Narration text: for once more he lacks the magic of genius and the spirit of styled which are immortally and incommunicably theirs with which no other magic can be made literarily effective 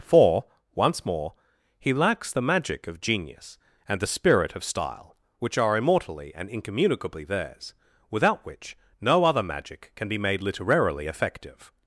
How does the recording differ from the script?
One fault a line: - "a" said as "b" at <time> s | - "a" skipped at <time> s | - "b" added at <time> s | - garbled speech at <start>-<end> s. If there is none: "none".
- "styled" said as "style" at 4.6 s
- "with" said as "without" at 8.1 s